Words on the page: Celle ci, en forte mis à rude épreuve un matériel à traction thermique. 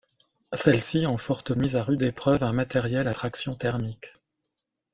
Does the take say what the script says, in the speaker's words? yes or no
yes